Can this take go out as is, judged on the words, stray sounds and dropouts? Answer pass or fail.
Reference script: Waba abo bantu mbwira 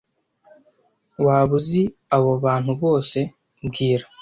fail